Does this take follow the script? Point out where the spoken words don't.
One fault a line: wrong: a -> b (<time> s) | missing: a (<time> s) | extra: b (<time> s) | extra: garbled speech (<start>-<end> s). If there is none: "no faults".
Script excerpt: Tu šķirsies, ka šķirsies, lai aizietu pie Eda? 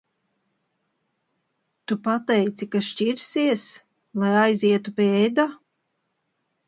wrong: šķirsies -> pateici (2.1 s)